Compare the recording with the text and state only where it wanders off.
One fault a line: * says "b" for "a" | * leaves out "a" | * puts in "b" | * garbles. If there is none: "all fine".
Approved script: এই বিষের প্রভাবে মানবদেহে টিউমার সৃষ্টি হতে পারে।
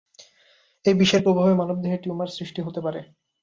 all fine